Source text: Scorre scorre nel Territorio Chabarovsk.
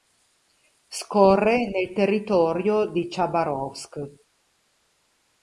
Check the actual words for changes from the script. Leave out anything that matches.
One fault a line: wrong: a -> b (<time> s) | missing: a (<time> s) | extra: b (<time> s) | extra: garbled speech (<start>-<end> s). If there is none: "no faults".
missing: scorre (1.7 s)
extra: di (2.9 s)